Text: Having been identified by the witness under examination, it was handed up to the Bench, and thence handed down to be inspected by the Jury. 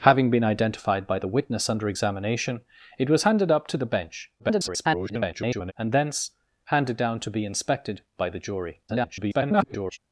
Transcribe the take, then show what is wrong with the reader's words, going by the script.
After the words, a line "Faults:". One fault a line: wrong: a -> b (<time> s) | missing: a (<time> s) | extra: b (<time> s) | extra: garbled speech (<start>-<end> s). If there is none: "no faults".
Having been identified by the witness under examination, it was handed up to the Bench, [garbled] and thence handed down to be inspected by the Jury. [garbled]
Faults:
extra: garbled speech (4.4-5.7 s)
extra: garbled speech (8.9-10.0 s)